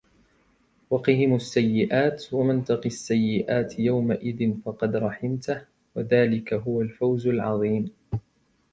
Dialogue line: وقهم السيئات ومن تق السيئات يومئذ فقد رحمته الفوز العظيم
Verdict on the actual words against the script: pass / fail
fail